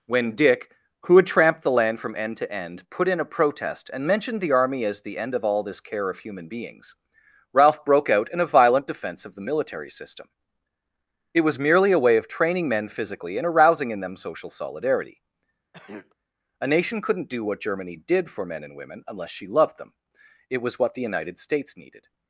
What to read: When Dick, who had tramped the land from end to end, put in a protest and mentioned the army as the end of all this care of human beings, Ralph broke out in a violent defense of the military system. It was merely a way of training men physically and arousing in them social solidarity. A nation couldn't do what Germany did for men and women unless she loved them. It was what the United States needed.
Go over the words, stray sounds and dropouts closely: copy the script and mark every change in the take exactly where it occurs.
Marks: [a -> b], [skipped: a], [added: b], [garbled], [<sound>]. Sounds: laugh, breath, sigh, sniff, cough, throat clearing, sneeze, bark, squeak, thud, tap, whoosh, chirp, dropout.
When Dick, who had tramped the land from end to end, put in a protest and mentioned the army as the end of all this care of human beings, Ralph broke out in a violent defense of the military system. It was merely a way of training men physically and arousing in them social solidarity. [throat clearing] A nation couldn't do what Germany did for men and women unless she loved them. It was what the United States needed.